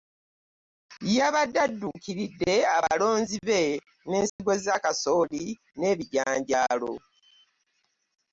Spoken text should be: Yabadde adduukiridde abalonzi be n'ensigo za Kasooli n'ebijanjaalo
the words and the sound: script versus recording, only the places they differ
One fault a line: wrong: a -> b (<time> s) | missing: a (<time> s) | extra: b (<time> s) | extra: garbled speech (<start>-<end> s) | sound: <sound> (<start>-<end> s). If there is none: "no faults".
sound: dropout (4.3-4.4 s)